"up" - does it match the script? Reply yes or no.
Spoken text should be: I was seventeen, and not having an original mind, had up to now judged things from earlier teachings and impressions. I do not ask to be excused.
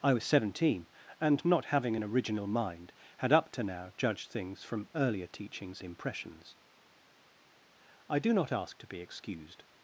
yes